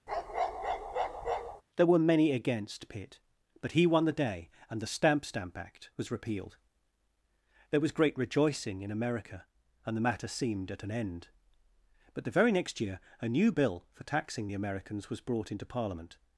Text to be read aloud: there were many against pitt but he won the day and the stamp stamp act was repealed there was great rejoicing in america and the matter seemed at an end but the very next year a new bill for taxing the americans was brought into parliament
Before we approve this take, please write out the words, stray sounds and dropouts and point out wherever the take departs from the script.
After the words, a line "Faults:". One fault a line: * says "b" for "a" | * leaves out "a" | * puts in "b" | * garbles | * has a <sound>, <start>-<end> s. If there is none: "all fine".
there were many against pitt but he won the day and the stamp stamp act was repealed there was great rejoicing in america and the matter seemed at an end but the very next year a new bill for taxing the americans was brought into parliament
Faults:
* has a bark, 0.1-1.6 s